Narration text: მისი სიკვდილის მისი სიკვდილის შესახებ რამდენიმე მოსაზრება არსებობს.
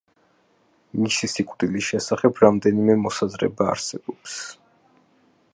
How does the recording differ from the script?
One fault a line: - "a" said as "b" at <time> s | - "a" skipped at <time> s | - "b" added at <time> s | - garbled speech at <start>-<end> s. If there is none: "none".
- "მისი სიკვდილის" skipped at 1.9 s